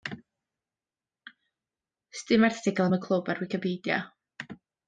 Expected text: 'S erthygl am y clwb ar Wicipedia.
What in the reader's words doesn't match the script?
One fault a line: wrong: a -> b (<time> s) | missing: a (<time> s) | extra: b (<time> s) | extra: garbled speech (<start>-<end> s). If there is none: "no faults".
extra: dim (2.3 s)